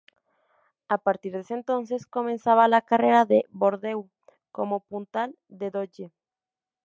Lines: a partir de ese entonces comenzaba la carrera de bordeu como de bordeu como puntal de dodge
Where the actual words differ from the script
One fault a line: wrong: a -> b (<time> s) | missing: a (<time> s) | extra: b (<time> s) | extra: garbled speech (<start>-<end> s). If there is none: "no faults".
missing: de bordeu como (4.8 s)